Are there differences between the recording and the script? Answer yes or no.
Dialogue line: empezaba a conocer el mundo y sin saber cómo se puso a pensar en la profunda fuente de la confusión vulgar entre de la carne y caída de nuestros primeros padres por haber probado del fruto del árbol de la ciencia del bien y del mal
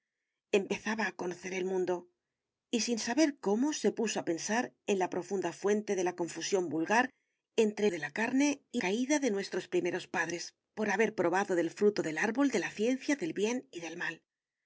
no